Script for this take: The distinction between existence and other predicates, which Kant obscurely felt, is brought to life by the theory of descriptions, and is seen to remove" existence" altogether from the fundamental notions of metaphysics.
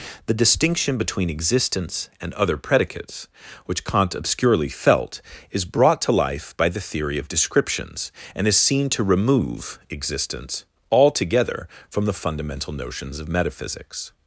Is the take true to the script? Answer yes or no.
yes